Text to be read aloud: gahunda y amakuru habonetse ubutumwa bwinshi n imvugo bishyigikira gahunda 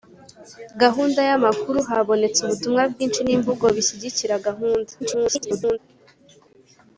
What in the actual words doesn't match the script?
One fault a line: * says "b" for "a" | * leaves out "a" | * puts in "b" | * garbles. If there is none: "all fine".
* garbles